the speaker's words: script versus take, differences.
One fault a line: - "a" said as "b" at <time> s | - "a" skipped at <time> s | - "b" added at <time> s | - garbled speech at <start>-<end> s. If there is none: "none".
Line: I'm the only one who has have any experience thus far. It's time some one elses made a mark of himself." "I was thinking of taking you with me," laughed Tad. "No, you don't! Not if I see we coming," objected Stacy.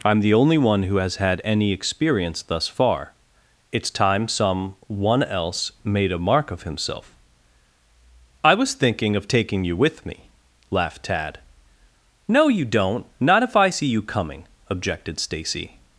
- "have" said as "had" at 1.2 s
- "elses" said as "else" at 5.2 s
- "we" said as "you" at 13.9 s